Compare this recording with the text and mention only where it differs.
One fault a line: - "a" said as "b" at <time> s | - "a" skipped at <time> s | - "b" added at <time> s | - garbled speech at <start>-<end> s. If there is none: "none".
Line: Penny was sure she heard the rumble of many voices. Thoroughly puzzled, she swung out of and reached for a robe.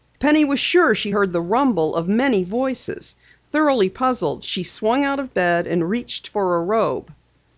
- "bed" added at 5.3 s